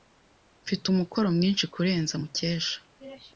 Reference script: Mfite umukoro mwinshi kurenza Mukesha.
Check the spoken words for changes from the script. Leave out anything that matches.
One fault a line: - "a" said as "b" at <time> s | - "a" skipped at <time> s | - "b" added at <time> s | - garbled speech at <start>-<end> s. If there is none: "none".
none